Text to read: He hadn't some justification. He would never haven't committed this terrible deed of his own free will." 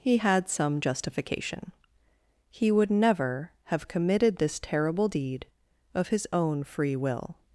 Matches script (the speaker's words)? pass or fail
fail